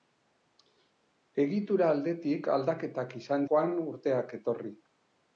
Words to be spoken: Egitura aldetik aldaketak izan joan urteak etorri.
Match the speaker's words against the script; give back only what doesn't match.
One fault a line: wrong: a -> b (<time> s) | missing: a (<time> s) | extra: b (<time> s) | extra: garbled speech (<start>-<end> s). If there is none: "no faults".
no faults